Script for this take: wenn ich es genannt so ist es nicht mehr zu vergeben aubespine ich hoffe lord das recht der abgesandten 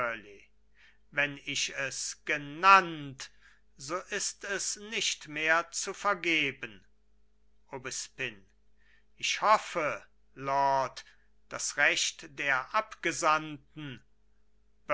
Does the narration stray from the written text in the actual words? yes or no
no